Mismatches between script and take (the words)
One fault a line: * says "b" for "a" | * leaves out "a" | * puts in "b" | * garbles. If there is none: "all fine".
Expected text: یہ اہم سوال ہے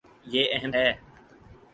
* leaves out "سوال"